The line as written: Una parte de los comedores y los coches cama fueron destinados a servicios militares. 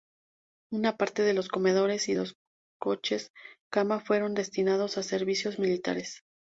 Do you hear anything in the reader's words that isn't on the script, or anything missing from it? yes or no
no